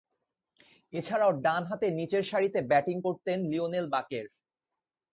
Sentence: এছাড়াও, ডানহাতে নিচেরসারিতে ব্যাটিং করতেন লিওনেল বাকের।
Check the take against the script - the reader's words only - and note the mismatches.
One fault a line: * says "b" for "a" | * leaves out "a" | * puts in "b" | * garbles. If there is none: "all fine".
all fine